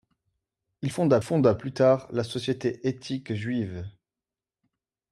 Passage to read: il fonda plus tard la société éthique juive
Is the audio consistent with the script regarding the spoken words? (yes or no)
no